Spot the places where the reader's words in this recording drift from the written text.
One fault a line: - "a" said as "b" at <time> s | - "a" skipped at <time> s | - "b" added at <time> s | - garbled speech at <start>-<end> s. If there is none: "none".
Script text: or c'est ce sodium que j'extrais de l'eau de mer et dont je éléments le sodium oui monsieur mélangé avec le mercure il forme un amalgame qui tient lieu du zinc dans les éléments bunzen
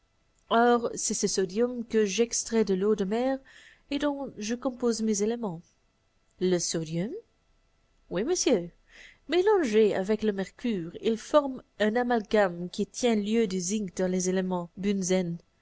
- "compose mes" added at 4.5 s